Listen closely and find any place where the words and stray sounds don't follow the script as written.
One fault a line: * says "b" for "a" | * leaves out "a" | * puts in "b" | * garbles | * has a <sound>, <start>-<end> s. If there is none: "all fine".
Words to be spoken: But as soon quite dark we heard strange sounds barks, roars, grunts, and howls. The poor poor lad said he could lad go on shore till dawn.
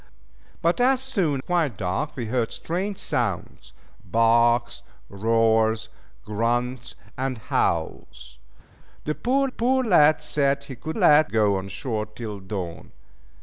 all fine